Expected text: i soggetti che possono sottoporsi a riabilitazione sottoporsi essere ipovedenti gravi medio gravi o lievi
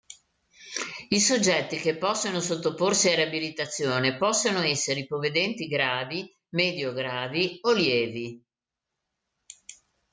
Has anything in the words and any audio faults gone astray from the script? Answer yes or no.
yes